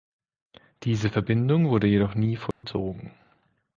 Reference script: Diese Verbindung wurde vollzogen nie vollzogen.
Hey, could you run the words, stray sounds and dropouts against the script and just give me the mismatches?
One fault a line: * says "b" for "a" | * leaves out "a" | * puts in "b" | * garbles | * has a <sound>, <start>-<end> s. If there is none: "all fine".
* says "jedoch" for "vollzogen"
* has a dropout, 2.5-2.6 s